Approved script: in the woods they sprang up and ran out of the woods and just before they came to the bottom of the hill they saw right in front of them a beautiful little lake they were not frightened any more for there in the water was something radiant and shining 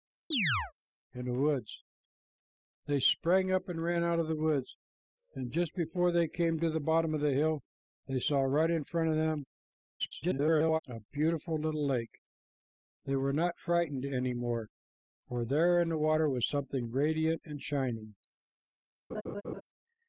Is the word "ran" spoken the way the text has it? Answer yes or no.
yes